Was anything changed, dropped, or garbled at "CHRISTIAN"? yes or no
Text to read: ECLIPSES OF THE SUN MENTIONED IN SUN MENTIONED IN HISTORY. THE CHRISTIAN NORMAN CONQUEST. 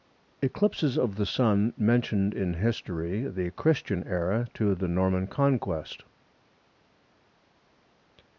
yes